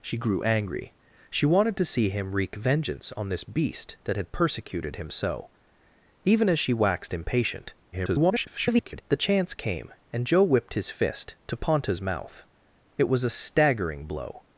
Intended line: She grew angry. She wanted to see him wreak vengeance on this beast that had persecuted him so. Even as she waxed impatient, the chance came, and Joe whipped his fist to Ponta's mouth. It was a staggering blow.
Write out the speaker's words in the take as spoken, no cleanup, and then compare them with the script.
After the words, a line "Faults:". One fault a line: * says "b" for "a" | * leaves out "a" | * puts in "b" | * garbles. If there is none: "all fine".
She grew angry. She wanted to see him wreak vengeance on this beast that had persecuted him so. Even as she waxed impatient, [garbled] the chance came, and Joe whipped his fist to Ponta's mouth. It was a staggering blow.
Faults:
* garbles